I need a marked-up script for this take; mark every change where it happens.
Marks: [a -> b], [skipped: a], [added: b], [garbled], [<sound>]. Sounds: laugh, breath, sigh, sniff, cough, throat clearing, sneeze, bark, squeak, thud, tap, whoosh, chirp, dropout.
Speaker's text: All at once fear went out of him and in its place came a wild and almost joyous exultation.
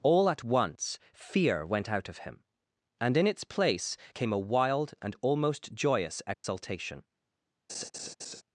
All at once fear went out of him and in its place came a wild and almost joyous exultation. [dropout] [laugh]